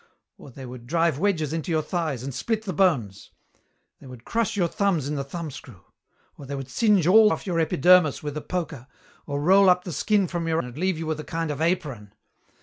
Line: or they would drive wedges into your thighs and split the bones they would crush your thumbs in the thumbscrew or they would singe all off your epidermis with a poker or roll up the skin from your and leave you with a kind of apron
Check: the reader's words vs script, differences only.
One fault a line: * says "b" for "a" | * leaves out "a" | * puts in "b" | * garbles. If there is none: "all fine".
all fine